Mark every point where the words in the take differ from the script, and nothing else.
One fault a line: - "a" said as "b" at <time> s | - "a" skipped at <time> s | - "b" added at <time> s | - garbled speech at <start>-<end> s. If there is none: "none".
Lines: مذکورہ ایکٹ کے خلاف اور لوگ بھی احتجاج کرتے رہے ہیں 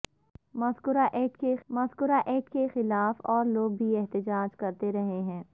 - "مذکورہ ایکٹ کے" added at 1.7 s